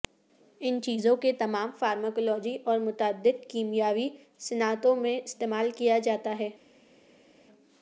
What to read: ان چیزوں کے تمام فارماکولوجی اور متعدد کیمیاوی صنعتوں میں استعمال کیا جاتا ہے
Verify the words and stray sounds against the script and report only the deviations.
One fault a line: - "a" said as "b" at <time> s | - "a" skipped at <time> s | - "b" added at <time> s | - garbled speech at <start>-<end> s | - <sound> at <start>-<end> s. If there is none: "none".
none